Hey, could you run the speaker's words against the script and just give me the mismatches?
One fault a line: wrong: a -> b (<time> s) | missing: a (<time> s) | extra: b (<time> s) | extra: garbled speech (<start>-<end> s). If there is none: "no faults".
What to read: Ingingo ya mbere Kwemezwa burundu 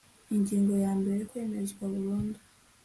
no faults